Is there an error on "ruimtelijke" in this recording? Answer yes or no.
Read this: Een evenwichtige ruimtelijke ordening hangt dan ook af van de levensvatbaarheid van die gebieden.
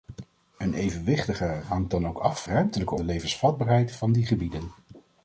yes